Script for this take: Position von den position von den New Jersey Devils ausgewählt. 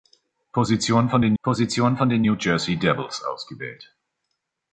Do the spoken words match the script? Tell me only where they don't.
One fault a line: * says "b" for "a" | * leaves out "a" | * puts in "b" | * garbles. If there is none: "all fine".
all fine